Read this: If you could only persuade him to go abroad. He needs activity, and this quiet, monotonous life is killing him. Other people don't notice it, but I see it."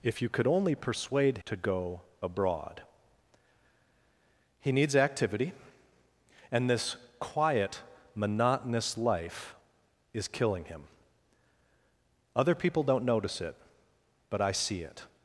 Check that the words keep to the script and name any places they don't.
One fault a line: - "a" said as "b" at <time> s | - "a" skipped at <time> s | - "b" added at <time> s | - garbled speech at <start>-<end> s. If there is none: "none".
- "him" skipped at 1.4 s